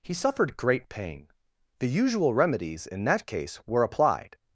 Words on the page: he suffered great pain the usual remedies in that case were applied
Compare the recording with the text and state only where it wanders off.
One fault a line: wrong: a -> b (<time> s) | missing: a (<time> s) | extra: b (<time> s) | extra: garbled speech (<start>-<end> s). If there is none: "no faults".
no faults